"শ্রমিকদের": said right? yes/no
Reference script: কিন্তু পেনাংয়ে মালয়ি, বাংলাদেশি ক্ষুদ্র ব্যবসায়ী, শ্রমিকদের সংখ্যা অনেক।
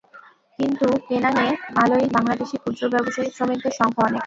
yes